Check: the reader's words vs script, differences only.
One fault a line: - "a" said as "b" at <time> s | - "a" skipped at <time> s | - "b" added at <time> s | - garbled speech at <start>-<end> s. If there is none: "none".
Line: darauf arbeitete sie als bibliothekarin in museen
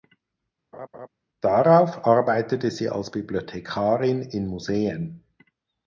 none